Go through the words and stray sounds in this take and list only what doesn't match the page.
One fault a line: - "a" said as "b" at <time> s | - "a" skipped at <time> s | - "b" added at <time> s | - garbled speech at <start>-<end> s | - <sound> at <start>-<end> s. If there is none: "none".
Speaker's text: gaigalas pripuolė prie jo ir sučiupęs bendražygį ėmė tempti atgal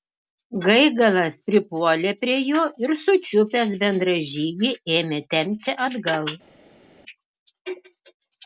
none